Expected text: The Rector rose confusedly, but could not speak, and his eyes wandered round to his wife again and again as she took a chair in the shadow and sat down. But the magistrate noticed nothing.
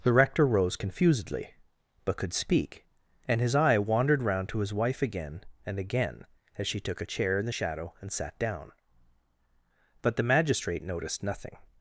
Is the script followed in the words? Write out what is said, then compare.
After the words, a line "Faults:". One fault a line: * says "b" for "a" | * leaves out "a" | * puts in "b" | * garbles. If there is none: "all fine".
The Rector rose confusedly, but could speak, and his eye wandered round to his wife again and again as she took a chair in the shadow and sat down. But the magistrate noticed nothing.
Faults:
* leaves out "not"
* says "eye" for "eyes"